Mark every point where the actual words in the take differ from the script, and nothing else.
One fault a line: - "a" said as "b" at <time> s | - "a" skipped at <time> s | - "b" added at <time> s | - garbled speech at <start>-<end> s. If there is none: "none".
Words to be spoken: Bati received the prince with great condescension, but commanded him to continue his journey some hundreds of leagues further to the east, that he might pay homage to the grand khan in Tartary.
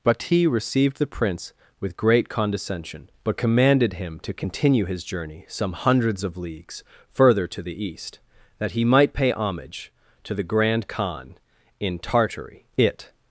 - "It" added at 12.8 s